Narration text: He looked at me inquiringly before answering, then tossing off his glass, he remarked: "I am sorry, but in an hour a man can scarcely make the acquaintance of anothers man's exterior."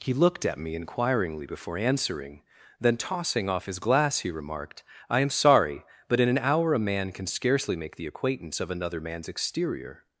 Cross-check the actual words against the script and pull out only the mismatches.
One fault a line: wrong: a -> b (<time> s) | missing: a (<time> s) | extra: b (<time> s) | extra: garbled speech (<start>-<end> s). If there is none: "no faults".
wrong: anothers -> another (8.7 s)